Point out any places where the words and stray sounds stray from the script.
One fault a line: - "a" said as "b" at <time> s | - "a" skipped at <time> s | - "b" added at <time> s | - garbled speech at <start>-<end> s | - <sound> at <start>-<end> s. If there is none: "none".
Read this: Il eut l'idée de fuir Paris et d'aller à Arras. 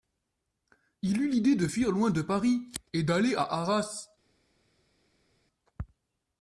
- "loin de" added at 1.9 s